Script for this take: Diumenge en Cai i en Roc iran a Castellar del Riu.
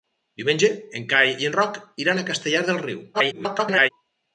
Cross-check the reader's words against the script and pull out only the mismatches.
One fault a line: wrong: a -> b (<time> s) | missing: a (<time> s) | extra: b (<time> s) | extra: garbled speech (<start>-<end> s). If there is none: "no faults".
extra: garbled speech (3.1-3.9 s)